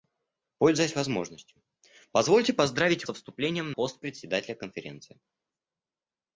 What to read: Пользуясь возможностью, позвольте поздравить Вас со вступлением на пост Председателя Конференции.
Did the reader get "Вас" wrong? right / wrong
wrong